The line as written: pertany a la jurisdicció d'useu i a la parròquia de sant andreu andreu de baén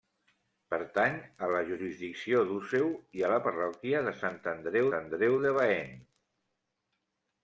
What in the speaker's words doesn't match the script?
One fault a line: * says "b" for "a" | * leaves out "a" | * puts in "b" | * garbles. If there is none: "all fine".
all fine